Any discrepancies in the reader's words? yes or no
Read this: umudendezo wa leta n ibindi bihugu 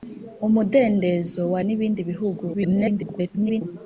yes